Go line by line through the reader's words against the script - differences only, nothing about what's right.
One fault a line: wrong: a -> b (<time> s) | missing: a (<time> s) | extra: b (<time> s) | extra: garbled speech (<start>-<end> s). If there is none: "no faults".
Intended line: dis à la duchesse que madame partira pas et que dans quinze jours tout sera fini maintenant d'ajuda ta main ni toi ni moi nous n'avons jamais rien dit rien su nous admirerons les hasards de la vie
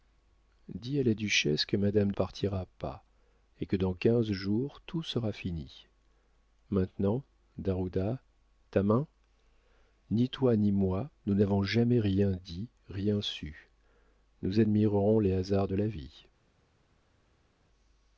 no faults